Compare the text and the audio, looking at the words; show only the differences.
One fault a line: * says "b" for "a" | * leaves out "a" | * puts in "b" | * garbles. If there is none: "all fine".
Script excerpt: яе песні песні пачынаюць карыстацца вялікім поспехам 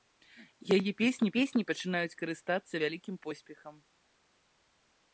all fine